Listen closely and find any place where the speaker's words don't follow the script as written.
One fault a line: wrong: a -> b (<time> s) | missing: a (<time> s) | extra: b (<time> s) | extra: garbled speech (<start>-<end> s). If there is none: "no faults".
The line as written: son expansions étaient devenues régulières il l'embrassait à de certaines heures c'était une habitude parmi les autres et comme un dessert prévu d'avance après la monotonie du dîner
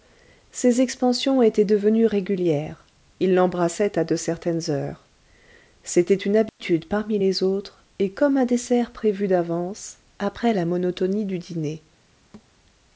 wrong: son -> ses (0.5 s)